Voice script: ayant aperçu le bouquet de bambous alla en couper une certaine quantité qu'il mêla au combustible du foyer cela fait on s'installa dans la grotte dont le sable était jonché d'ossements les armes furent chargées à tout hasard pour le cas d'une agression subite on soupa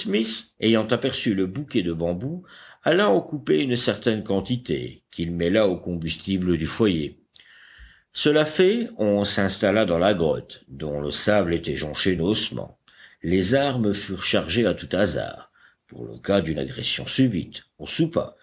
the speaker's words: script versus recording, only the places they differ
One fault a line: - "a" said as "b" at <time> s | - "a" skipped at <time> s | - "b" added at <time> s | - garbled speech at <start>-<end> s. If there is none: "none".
none